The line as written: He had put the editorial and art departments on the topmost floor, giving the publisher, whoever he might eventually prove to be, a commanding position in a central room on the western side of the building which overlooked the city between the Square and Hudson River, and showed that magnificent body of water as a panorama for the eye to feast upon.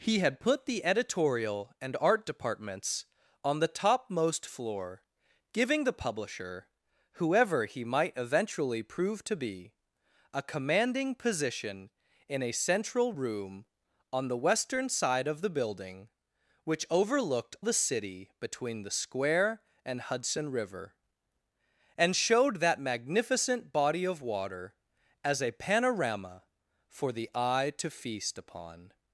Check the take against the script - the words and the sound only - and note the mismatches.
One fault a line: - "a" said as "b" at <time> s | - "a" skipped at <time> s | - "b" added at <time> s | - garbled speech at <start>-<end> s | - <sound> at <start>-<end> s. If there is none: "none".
none